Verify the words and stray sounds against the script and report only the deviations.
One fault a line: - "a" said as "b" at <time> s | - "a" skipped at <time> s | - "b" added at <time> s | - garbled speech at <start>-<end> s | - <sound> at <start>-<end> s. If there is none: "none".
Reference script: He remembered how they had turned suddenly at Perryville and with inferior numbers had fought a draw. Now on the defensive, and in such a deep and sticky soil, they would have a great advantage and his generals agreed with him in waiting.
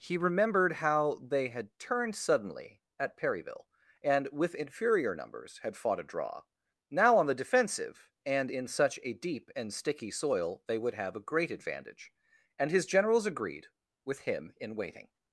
none